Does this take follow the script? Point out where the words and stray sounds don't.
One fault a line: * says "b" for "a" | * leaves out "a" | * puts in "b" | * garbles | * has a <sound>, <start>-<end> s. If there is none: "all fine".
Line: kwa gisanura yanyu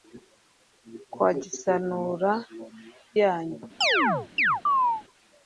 * has a chirp, 3.8-5.0 s